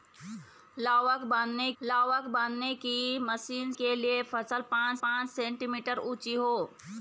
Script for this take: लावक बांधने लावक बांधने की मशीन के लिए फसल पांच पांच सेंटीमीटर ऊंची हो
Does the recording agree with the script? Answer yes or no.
yes